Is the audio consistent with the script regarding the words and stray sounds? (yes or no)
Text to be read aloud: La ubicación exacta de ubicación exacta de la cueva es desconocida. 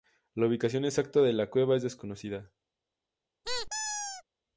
no